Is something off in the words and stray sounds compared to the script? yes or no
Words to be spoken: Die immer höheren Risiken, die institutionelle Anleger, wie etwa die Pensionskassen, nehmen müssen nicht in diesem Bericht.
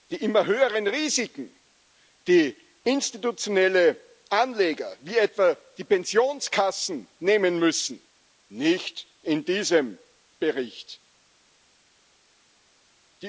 no